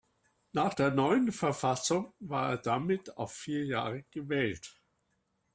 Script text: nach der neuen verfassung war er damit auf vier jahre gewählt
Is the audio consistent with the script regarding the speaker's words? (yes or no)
yes